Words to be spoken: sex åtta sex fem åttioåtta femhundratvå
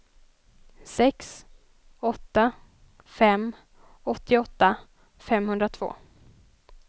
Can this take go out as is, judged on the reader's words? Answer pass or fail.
fail